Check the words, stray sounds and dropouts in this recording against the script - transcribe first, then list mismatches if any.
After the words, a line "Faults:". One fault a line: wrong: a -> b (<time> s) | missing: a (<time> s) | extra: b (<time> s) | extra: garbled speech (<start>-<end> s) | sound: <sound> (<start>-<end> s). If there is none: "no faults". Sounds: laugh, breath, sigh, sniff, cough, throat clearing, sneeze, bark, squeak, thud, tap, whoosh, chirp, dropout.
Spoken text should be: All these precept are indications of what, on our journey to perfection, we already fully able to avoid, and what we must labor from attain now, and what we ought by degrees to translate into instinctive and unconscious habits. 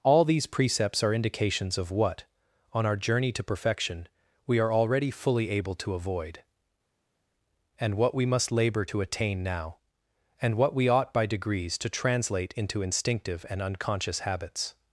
All these precepts are indications of what, on our journey to perfection, we are already fully able to avoid, and what we must labor to attain now, and what we ought by degrees to translate into instinctive and unconscious habits.
Faults:
wrong: precept -> precepts (0.5 s)
extra: are (4.6 s)
wrong: from -> to (8.8 s)